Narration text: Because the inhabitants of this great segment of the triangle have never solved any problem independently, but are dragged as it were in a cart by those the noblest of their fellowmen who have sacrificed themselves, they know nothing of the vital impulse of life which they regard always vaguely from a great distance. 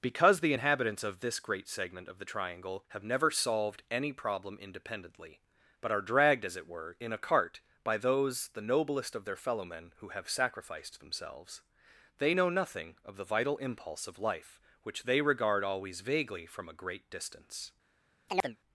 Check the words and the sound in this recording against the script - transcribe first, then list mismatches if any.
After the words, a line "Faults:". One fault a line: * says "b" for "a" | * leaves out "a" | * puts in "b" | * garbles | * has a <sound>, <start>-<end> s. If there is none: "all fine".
Because the inhabitants of this great segment of the triangle have never solved any problem independently, but are dragged as it were in a cart by those the noblest of their fellowmen who have sacrificed themselves, they know nothing of the vital impulse of life which they regard always vaguely from a great distance.
Faults:
* has a chirp, 18.3-18.6 s